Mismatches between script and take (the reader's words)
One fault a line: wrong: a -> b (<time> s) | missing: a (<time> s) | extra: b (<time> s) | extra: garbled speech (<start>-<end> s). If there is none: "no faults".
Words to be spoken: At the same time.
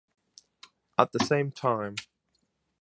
no faults